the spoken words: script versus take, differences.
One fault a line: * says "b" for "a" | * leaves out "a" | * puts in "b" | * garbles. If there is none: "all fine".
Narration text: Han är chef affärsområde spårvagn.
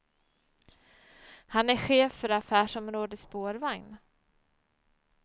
* puts in "för"